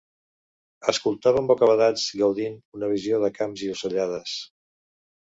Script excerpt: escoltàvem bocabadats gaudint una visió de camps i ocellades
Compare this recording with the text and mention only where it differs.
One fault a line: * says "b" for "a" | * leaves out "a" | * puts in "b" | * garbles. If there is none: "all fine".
all fine